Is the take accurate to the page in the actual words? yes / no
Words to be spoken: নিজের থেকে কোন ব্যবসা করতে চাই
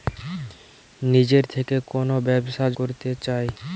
yes